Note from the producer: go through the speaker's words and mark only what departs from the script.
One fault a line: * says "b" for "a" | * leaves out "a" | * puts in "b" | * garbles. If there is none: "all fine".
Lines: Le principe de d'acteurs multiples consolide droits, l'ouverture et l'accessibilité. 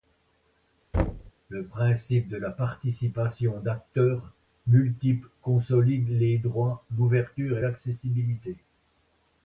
* puts in "la participation"
* puts in "les"